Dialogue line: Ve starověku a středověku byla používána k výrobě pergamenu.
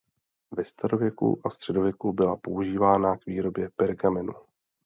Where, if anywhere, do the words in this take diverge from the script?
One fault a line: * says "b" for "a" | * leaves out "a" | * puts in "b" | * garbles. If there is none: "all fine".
all fine